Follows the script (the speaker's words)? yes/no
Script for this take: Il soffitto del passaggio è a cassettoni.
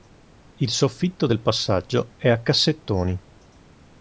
yes